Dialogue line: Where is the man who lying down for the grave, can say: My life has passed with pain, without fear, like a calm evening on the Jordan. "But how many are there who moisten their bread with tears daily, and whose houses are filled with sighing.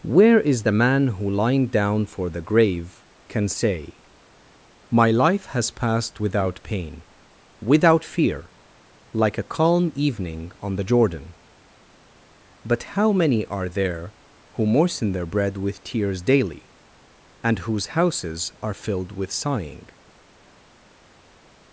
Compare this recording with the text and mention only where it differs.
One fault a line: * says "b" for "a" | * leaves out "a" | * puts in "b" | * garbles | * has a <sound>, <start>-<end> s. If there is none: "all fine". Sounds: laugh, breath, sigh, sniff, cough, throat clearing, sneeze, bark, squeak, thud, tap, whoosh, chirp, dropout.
* says "without" for "with"